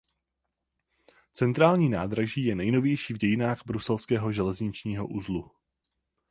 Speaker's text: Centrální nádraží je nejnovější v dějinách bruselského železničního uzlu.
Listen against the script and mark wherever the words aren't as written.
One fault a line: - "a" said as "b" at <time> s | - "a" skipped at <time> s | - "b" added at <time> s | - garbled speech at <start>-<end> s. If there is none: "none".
none